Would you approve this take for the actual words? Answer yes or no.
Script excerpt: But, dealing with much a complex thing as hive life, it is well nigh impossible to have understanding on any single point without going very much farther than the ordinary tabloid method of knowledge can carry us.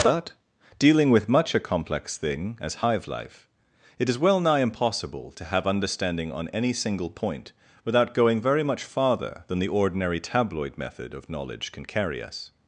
yes